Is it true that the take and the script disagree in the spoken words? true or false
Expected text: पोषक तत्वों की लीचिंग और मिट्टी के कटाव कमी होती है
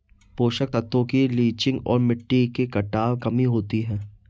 false